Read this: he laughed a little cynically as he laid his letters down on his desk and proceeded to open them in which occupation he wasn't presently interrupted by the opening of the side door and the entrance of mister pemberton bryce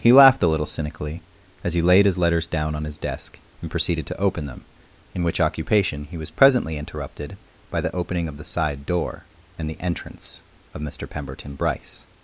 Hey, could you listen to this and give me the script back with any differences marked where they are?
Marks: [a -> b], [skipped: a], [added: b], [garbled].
he laughed a little cynically as he laid his letters down on his desk and proceeded to open them in which occupation he [wasn't -> was] presently interrupted by the opening of the side door and the entrance of mister pemberton bryce